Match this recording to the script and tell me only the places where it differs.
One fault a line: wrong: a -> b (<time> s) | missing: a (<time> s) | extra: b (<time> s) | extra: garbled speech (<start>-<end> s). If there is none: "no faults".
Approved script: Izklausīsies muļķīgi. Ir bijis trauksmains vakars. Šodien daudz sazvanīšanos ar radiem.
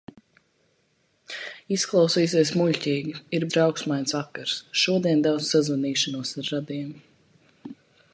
missing: bijis (3.5 s)